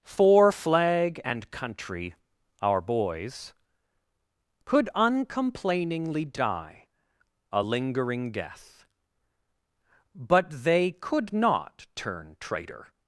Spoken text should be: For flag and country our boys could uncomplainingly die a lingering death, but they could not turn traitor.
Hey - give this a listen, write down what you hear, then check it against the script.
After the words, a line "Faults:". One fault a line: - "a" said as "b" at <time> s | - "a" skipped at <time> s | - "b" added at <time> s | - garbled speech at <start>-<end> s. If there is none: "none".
For flag and country our boys could uncomplainingly die a lingering death, but they could not turn traitor.
Faults:
none